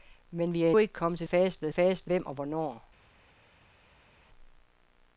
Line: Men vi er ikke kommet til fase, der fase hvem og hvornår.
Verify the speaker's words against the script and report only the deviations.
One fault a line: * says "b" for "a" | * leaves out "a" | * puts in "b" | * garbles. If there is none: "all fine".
all fine